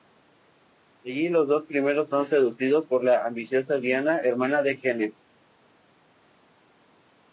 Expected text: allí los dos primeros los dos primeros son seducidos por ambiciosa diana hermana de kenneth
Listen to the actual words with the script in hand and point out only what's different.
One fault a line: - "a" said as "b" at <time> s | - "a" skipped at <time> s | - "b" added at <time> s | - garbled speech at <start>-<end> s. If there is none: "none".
- "los dos primeros" skipped at 2.1 s
- "la" added at 3.0 s